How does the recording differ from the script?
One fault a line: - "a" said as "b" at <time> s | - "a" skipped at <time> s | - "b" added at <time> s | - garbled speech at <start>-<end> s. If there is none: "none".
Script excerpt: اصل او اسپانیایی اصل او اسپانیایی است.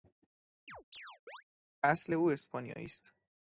- "اصل او اسپانیایی" skipped at 2.8 s